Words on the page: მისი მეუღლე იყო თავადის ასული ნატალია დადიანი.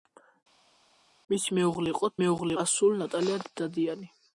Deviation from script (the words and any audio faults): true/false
true